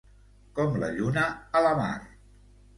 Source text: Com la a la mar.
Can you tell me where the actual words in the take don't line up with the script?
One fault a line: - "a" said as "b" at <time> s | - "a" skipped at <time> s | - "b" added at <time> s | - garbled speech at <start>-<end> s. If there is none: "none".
- "lluna" added at 0.9 s